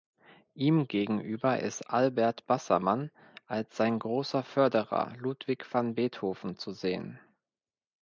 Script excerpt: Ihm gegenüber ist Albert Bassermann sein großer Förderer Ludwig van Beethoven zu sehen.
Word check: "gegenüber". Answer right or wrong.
right